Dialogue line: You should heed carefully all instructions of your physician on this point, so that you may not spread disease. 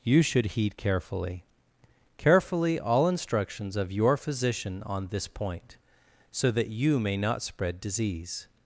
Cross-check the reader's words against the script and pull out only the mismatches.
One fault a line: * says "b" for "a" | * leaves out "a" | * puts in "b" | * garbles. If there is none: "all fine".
* puts in "carefully"